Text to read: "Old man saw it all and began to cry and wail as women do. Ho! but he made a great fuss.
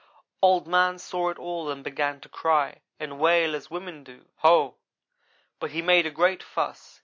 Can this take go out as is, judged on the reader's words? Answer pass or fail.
pass